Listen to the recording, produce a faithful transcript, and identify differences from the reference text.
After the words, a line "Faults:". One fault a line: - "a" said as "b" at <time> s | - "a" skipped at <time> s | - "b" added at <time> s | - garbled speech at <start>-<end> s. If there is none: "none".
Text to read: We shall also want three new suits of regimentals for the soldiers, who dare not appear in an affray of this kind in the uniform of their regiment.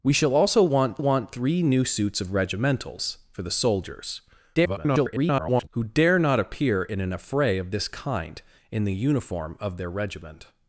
We shall also want want three new suits of regimentals for the soldiers, [garbled] who dare not appear in an affray of this kind in the uniform of their regiment.
Faults:
- "want" added at 1.0 s
- garbled speech at 4.5-5.7 s